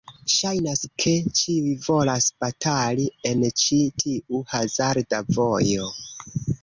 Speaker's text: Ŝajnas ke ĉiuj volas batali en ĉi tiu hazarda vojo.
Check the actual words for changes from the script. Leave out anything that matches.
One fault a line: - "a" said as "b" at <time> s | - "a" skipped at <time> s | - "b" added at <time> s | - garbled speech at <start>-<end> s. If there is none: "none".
none